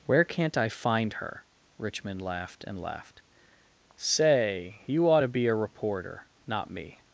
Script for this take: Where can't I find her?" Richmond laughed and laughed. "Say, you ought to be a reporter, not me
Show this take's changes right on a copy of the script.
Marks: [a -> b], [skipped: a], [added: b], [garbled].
Where can't I find her?" Richmond laughed and laughed. "Say, you ought to be a reporter, not me